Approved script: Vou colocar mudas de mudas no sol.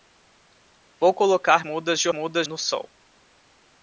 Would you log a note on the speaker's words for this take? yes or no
no